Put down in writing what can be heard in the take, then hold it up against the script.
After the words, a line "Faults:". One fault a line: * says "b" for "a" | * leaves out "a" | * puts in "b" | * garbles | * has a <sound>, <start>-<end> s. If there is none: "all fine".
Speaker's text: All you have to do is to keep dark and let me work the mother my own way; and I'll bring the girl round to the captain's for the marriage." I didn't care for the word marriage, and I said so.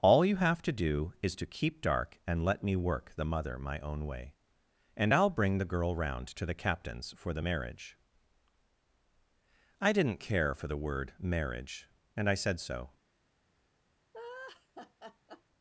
All you have to do is to keep dark and let me work the mother my own way; and I'll bring the girl round to the captain's for the marriage." I didn't care for the word marriage, and I said so.
Faults:
* has a laugh, 14.1-15.4 s